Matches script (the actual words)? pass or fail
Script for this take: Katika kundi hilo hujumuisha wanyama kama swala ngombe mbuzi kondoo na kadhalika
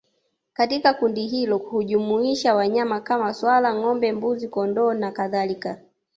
pass